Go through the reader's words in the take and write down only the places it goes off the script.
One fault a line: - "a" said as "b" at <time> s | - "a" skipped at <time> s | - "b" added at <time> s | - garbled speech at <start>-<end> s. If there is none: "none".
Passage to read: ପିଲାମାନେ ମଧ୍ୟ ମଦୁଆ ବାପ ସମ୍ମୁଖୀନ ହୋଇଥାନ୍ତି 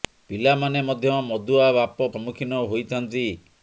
none